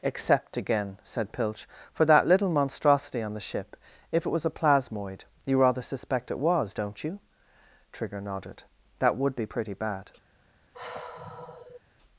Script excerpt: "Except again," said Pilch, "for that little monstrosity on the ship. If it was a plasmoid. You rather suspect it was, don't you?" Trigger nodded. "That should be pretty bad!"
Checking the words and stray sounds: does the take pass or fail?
fail